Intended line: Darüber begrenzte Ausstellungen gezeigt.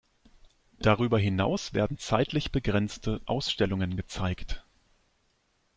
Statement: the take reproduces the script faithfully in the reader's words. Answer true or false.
false